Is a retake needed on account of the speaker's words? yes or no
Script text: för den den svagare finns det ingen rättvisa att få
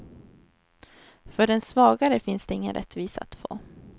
yes